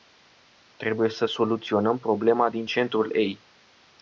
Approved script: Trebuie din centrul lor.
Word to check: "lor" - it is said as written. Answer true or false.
false